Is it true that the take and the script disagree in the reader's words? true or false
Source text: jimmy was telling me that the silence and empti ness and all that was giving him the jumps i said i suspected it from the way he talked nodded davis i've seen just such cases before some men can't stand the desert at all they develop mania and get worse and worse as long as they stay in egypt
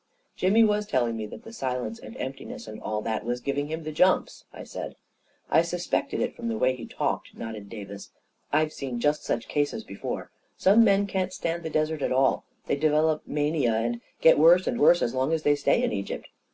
false